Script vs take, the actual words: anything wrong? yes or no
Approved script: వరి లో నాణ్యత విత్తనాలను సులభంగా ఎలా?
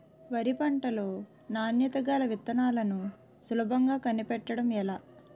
yes